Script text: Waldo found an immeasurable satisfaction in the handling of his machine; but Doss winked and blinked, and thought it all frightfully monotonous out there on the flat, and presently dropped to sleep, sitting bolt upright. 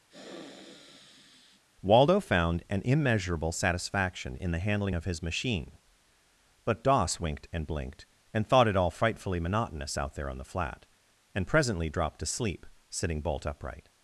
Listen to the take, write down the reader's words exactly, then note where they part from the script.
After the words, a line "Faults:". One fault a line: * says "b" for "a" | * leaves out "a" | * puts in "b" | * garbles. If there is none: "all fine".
Waldo found an immeasurable satisfaction in the handling of his machine; but Doss winked and blinked, and thought it all frightfully monotonous out there on the flat, and presently dropped to sleep, sitting bolt upright.
Faults:
all fine